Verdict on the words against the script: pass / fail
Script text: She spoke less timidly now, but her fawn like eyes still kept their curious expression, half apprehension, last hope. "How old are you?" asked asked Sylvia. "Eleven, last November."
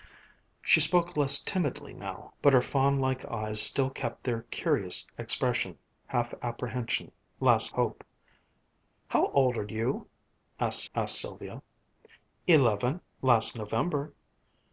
pass